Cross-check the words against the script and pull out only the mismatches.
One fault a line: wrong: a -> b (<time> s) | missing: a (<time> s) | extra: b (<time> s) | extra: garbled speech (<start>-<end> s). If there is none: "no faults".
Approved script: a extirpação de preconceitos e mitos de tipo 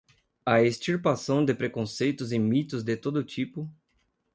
extra: todo (3.0 s)